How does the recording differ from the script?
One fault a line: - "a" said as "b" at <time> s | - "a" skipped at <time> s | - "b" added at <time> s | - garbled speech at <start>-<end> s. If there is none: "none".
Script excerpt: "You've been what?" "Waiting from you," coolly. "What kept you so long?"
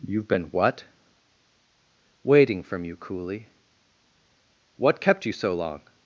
none